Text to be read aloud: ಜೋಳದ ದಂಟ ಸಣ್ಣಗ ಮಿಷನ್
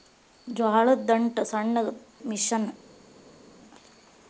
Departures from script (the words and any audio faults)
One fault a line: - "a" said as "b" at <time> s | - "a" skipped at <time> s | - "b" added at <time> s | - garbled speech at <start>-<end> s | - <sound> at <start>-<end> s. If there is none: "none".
none